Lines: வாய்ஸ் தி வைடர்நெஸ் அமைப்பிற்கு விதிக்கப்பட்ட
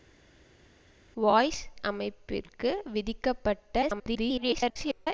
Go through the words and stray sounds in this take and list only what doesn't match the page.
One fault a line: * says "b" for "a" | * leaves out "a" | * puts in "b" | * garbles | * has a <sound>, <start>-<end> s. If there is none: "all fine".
* leaves out "தி வைடர்நெஸ்"
* garbles